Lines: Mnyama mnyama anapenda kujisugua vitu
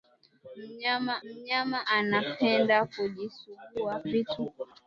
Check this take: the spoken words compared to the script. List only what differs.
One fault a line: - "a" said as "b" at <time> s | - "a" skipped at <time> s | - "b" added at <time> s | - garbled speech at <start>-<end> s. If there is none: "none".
none